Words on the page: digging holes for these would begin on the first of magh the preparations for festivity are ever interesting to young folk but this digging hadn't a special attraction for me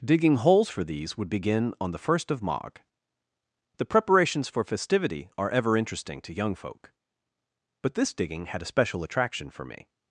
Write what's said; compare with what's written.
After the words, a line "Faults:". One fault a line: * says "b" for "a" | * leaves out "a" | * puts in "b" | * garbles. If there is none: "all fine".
digging holes for these would begin on the first of magh the preparations for festivity are ever interesting to young folk but this digging had a special attraction for me
Faults:
* says "had" for "hadn't"